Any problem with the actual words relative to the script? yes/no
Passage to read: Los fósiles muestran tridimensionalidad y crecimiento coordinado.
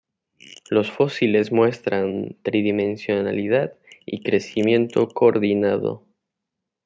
no